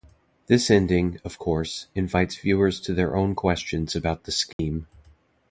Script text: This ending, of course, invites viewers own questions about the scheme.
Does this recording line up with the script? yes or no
no